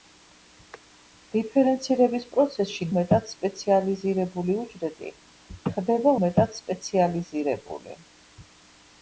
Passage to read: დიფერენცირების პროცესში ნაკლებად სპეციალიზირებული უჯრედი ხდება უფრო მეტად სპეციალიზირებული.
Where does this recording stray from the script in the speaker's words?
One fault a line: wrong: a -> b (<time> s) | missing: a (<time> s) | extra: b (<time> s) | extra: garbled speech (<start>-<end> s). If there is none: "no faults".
wrong: ნაკლებად -> მეტად (3.0 s)
missing: უფრო (6.2 s)